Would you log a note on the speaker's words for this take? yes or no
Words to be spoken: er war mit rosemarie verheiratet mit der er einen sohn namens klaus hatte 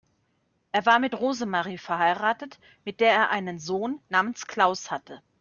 no